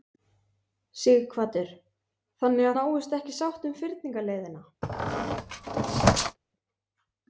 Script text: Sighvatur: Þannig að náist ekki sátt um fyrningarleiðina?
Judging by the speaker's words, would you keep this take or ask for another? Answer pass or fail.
pass